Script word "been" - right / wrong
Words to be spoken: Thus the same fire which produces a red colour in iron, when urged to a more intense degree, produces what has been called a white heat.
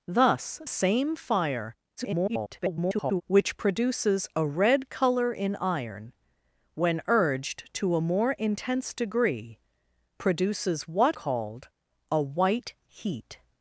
wrong